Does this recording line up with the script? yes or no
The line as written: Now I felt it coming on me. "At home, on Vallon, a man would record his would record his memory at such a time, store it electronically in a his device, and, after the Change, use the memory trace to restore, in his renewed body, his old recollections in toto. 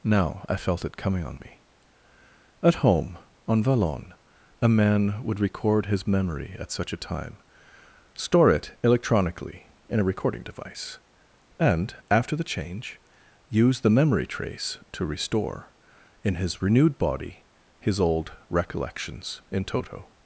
no